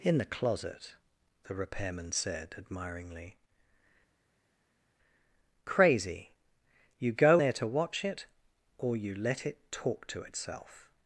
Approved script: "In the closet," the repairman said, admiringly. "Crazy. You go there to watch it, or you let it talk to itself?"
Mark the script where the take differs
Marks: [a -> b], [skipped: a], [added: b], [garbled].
"In the closet," the repairman said, admiringly. "Crazy. You go there to watch it, or you let it talk to itself?"